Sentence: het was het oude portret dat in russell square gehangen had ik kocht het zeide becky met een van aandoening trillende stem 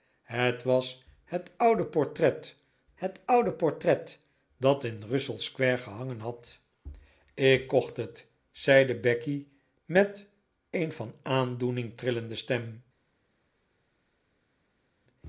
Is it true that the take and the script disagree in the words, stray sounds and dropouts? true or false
true